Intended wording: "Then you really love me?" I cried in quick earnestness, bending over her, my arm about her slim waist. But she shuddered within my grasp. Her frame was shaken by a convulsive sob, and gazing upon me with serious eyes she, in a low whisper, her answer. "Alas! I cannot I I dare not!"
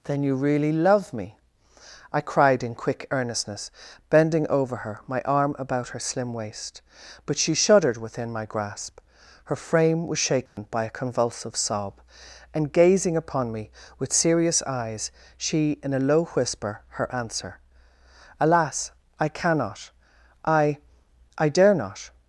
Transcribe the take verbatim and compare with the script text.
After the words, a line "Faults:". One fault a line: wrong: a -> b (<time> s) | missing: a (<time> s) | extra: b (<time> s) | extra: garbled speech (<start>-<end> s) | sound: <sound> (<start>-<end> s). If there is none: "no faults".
"Then you really love me?" I cried in quick earnestness, bending over her, my arm about her slim waist. But she shuddered within my grasp. Her frame was shaken by a convulsive sob, and gazing upon me with serious eyes she, in a low whisper, her answer. "Alas! I cannot I I dare not!"
Faults:
sound: dropout (10.5-10.6 s)